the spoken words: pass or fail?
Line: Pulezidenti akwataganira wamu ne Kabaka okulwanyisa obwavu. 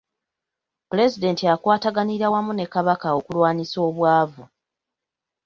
pass